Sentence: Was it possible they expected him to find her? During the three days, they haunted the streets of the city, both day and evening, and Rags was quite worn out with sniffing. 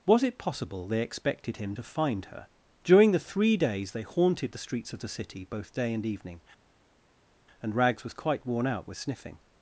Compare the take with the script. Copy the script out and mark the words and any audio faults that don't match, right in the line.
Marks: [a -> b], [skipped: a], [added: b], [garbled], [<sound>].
Was it possible they expected him to find her? During the three days, they haunted the streets of the city, both day and evening, and Rags was quite worn out with sniffing.